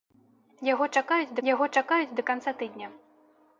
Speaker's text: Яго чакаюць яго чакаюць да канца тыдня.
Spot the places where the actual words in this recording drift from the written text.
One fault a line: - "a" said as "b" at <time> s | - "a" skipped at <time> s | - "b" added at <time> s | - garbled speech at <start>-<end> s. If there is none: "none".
none